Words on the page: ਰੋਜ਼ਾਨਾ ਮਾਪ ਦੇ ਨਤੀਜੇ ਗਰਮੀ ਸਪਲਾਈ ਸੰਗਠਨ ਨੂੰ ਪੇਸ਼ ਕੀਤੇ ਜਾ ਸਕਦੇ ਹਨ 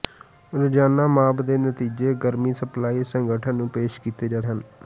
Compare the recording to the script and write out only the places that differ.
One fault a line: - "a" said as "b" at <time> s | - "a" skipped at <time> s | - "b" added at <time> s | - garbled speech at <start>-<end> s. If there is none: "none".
- "ਸਕਦੇ" skipped at 4.4 s